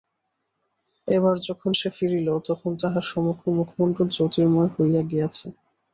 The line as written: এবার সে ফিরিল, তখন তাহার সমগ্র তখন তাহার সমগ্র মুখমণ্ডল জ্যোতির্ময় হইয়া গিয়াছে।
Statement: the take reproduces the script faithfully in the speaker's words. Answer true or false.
false